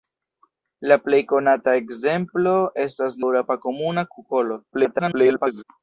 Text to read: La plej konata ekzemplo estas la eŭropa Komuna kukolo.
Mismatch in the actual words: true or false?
true